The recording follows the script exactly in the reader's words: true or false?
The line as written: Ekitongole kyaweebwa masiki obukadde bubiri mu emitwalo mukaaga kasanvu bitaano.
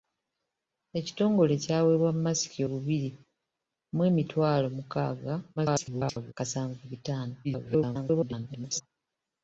false